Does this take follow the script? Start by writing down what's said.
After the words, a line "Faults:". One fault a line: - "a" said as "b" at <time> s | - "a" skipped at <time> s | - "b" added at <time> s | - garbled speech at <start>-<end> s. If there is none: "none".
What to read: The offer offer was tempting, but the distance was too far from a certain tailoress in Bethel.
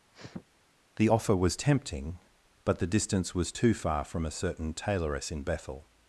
The offer was tempting, but the distance was too far from a certain tailoress in Bethel.
Faults:
- "offer" skipped at 1.4 s